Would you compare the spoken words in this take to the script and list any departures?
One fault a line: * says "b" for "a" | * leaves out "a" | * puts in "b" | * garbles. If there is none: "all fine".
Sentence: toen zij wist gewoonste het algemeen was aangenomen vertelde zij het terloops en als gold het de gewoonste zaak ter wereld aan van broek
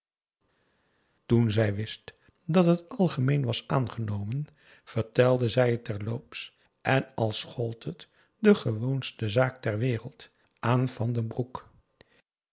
* says "dat" for "gewoonste"
* puts in "den"